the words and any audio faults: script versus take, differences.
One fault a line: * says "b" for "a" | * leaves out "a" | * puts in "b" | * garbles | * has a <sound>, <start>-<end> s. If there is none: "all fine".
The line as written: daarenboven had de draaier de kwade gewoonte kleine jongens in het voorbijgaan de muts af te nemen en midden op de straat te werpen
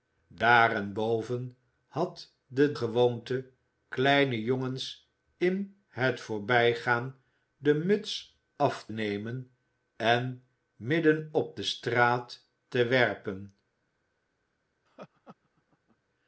* leaves out "draaier de kwade"
* leaves out "te"
* has a laugh, 14.9-16.0 s